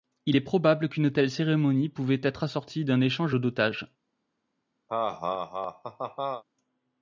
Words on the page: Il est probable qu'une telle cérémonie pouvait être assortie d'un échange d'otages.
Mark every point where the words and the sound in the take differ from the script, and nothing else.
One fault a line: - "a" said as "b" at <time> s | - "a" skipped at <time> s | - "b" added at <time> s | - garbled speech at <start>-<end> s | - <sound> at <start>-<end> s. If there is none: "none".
- laugh at 4.9-6.4 s